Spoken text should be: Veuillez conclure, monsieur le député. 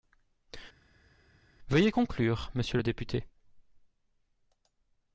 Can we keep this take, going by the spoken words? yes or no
yes